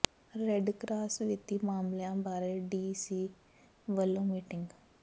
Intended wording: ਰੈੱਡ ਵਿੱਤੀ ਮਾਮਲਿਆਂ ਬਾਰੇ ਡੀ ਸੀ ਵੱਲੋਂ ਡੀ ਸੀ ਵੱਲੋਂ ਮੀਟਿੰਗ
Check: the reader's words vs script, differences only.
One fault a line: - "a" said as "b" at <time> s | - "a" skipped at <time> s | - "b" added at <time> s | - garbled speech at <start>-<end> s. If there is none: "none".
- "ਕਰਾਸ" added at 0.7 s
- "ਡੀ ਸੀ ਵੱਲੋਂ" skipped at 4.2 s